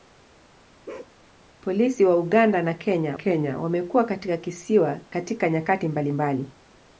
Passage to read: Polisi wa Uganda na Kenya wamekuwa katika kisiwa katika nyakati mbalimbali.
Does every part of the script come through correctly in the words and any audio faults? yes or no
no